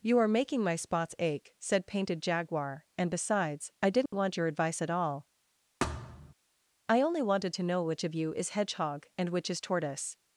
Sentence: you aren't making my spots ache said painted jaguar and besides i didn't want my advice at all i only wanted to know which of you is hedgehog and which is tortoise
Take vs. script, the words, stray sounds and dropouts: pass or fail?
fail